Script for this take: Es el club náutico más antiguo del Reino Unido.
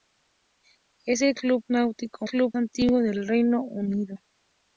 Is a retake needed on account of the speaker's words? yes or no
yes